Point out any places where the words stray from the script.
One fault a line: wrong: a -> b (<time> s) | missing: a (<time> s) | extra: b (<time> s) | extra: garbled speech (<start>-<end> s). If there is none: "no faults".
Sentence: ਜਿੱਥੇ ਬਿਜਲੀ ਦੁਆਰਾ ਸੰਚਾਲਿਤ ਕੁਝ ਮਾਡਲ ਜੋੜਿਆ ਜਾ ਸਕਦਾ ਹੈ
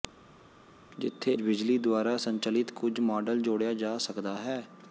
no faults